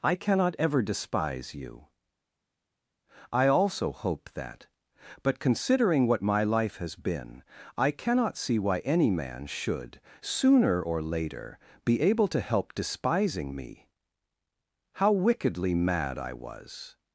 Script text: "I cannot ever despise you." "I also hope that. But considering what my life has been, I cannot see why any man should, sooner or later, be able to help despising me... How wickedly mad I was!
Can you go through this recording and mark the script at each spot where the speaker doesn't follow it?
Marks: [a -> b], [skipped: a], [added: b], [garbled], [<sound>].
"I cannot ever despise you." "I also hope that. But considering what my life has been, I cannot see why any man should, sooner or later, be able to help despising me... How wickedly mad I was!